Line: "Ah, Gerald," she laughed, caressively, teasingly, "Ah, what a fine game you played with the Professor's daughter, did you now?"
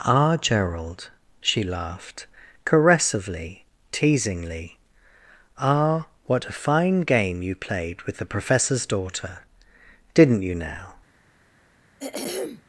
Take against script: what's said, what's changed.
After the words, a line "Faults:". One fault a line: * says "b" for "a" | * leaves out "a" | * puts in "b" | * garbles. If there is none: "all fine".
"Ah, Gerald," she laughed, caressively, teasingly, "Ah, what a fine game you played with the Professor's daughter, didn't you now?"
Faults:
* says "didn't" for "did"